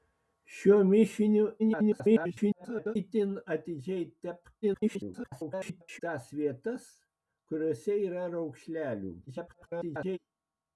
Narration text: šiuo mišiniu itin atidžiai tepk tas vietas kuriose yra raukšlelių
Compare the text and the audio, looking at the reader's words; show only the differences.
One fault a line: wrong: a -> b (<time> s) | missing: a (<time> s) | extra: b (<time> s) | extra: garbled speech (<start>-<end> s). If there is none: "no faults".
extra: garbled speech (1.6-3.0 s)
extra: garbled speech (4.6-6.0 s)
extra: garbled speech (9.3-10.2 s)